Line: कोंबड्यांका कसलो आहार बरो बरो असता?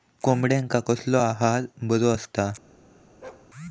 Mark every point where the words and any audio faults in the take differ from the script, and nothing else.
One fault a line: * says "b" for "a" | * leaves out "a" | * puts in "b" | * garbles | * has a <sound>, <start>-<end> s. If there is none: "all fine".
* leaves out "बरो"
* has a bark, 3.2-3.5 s